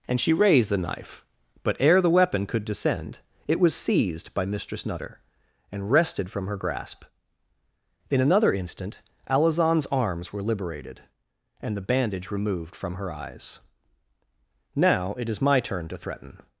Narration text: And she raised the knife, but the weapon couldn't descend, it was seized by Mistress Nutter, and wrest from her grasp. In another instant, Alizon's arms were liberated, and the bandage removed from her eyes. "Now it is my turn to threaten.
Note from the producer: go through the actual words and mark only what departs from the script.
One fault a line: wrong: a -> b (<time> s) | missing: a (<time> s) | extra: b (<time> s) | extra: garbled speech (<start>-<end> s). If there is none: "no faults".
extra: ere (1.8 s)
wrong: couldn't -> could (2.5 s)
wrong: wrest -> wrested (5.9 s)